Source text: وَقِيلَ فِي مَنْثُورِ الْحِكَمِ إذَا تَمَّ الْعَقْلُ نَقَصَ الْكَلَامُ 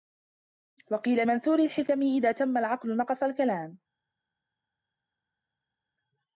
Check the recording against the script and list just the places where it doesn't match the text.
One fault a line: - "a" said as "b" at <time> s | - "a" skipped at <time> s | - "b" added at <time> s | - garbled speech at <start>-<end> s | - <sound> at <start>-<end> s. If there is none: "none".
- "فِي" skipped at 1.3 s